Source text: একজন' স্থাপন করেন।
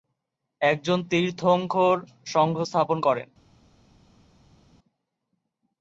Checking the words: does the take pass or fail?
fail